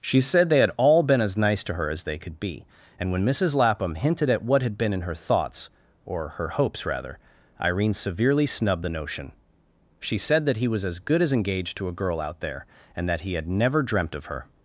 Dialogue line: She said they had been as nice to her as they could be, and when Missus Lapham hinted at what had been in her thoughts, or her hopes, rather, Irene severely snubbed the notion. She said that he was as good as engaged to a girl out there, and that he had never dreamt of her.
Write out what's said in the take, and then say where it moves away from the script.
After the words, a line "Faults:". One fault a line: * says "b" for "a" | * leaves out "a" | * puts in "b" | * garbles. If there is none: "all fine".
She said they had all been as nice to her as they could be, and when Missus Lapham hinted at what had been in her thoughts, or her hopes, rather, Irene severely snubbed the notion. She said that he was as good as engaged to a girl out there, and that he had never dreamt of her.
Faults:
* puts in "all"